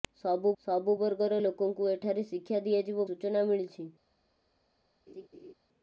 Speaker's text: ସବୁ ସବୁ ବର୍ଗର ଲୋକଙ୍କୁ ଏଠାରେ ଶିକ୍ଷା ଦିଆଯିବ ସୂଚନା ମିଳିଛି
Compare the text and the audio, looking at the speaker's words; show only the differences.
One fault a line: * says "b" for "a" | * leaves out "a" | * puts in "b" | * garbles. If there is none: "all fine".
all fine